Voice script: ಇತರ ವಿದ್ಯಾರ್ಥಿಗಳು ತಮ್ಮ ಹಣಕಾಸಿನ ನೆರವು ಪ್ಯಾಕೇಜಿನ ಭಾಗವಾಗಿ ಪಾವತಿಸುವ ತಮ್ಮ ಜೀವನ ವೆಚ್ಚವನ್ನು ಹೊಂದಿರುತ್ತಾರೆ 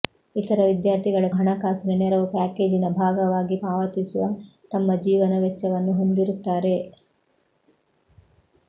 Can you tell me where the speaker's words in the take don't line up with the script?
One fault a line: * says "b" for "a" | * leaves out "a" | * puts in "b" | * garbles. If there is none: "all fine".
* leaves out "ತಮ್ಮ"